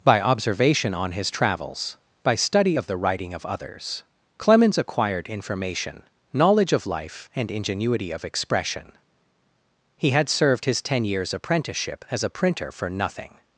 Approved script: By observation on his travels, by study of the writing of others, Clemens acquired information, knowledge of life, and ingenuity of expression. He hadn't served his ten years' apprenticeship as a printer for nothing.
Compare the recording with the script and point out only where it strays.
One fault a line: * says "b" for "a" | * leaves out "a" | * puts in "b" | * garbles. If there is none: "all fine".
* says "had" for "hadn't"